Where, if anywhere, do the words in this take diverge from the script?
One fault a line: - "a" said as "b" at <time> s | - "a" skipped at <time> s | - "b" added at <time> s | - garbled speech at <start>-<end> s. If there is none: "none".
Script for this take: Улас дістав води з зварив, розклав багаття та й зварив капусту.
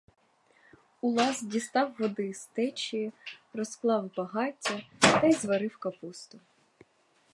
- "зварив" said as "течії" at 2.5 s